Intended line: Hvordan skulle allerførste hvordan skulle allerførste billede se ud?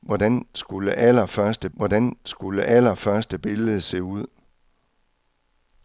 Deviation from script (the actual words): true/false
false